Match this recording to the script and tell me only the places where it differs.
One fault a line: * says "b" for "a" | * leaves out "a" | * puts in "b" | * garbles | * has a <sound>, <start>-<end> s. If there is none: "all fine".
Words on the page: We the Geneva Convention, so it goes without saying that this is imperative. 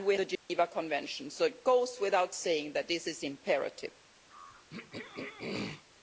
* has a dropout, 0.4-0.5 s
* has a throat clearing, 4.3-5.8 s